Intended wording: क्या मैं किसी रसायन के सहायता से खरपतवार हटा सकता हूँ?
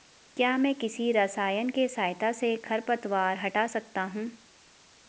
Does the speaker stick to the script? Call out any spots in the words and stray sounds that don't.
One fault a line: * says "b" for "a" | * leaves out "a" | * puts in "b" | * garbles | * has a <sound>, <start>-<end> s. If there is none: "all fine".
all fine